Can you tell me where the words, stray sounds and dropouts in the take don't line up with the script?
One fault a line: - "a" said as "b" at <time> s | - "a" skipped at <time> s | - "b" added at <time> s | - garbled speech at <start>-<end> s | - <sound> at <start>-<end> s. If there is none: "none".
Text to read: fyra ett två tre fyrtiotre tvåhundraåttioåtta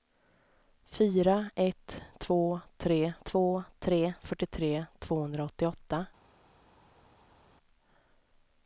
- "två tre" added at 3.2 s